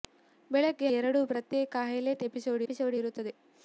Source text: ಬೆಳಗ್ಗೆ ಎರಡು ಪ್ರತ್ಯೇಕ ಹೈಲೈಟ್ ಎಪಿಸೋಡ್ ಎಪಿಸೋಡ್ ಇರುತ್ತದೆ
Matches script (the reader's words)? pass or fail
pass